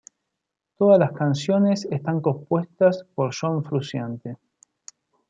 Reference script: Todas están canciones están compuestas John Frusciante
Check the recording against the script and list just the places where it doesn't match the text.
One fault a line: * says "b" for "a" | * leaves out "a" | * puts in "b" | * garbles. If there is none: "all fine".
* says "las" for "están"
* puts in "por"